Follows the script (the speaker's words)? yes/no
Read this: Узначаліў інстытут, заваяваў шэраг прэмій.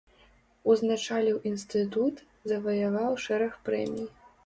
yes